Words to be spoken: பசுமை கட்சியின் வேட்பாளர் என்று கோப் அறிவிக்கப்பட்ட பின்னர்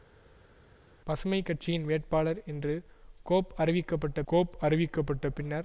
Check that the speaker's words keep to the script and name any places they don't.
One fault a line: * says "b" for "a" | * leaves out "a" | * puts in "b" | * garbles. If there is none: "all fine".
* puts in "கோப் அறிவிக்கப்பட்ட"